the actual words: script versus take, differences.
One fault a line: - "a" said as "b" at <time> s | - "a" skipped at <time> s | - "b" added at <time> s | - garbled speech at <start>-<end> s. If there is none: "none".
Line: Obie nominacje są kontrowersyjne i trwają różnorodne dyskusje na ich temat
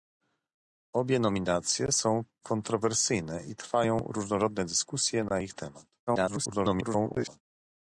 - garbled speech at 6.1-7.4 s